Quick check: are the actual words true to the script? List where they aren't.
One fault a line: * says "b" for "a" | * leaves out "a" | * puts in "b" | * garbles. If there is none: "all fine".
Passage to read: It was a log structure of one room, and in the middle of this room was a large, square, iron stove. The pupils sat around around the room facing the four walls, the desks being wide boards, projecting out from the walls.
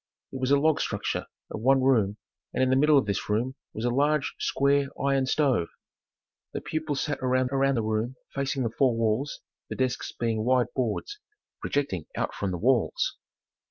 all fine